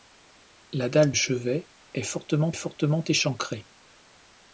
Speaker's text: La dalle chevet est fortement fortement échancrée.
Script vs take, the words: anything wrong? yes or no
no